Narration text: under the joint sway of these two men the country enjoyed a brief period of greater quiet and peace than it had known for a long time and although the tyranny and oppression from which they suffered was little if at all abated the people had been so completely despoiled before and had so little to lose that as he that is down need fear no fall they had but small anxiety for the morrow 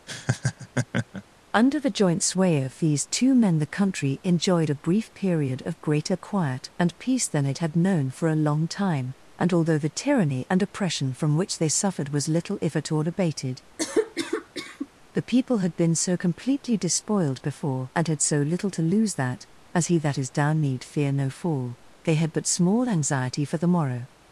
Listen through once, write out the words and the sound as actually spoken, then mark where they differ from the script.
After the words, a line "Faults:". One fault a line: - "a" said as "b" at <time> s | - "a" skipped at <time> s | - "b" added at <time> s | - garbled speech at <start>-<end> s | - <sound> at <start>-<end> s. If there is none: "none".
under the joint sway of these two men the country enjoyed a brief period of greater quiet and peace than it had known for a long time and although the tyranny and oppression from which they suffered was little if at all abated the people had been so completely despoiled before and had so little to lose that as he that is down need fear no fall they had but small anxiety for the morrow
Faults:
- laugh at 0.1-1.2 s
- cough at 13.8-14.9 s